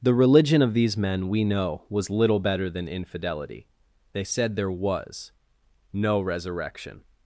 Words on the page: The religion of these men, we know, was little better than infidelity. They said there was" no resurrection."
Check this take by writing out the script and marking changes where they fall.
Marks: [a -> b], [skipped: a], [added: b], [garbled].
The religion of these men, we know, was little better than infidelity. They said there was" no resurrection."